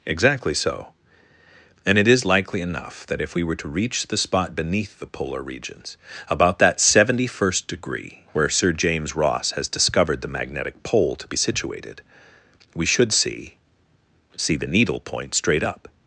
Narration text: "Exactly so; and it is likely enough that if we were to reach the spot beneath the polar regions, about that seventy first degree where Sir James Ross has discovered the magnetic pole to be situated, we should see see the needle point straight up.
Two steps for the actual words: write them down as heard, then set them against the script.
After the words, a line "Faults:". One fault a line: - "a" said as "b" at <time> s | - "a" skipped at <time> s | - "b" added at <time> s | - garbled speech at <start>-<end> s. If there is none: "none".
"Exactly so; and it is likely enough that if we were to reach the spot beneath the polar regions, about that seventy first degree where Sir James Ross has discovered the magnetic pole to be situated, we should see see the needle point straight up.
Faults:
none